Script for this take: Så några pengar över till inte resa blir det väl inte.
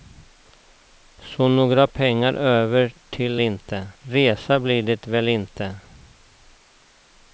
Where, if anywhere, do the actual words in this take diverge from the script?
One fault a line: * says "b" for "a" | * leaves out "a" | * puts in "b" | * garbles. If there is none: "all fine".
all fine